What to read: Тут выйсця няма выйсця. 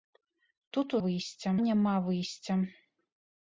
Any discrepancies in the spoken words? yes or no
no